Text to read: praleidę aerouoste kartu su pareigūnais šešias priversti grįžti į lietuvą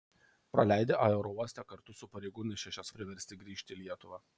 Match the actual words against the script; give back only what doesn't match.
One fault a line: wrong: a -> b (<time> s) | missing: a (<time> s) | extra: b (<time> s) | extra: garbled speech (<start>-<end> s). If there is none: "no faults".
no faults